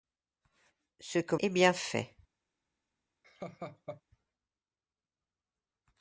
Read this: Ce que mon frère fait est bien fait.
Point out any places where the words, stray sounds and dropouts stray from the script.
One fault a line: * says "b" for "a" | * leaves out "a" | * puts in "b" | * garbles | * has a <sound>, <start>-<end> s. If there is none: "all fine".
* leaves out "mon frère fait"
* has a laugh, 3.2-4.0 s